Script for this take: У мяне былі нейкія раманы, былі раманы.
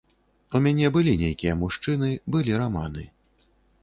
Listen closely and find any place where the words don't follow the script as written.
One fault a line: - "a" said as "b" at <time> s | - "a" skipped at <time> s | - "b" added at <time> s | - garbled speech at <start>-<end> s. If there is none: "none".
- "раманы" said as "мужчыны" at 1.6 s